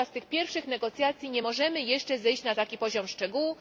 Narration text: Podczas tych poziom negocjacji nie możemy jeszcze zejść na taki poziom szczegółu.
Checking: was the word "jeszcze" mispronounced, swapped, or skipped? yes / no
no